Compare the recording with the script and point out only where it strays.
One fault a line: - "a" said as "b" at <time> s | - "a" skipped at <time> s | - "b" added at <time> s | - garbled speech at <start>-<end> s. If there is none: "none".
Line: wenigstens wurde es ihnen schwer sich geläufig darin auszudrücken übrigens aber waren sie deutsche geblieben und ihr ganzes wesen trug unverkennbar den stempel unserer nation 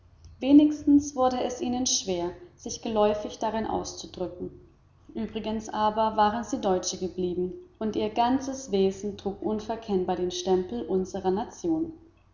none